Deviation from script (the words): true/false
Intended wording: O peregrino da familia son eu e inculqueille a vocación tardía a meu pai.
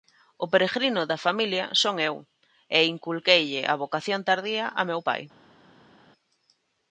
false